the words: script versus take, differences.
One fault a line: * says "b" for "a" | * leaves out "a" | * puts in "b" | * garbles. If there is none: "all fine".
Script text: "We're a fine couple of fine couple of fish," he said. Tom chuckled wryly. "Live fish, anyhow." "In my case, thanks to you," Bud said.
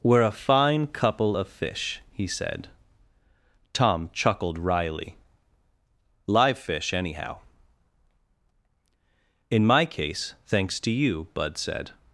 * leaves out "fine couple of"